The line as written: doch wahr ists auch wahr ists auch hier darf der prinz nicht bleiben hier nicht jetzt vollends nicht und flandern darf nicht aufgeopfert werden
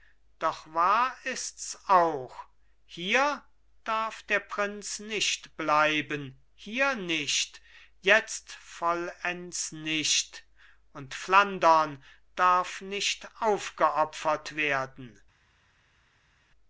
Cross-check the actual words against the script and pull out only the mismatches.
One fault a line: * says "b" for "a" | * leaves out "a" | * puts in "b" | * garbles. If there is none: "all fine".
* leaves out "wahr ists auch"